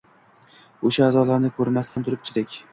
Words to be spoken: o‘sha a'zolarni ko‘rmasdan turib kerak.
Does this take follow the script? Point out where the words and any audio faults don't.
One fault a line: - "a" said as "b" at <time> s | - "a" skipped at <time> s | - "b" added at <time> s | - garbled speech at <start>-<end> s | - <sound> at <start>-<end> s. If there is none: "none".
- dropout at 1.9-2.0 s